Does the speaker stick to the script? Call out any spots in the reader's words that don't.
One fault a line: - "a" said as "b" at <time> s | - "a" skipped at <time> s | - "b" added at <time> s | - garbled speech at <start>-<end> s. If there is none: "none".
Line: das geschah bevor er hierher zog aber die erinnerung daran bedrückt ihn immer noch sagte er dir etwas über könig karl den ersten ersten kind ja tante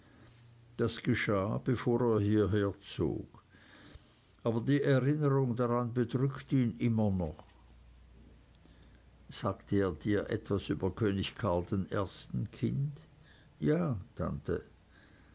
- "ersten" skipped at 12.5 s